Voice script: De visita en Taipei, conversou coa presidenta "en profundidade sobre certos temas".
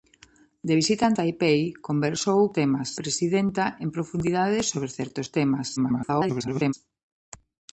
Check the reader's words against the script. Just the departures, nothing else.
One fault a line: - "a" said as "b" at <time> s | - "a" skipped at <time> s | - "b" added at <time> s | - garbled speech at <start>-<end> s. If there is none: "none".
- "coa" said as "temas" at 2.6 s
- garbled speech at 5.8-6.7 s